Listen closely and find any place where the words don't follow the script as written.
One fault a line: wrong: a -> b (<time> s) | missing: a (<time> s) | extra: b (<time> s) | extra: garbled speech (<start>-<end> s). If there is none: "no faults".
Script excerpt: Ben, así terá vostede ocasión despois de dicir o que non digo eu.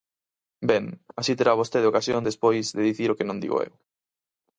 no faults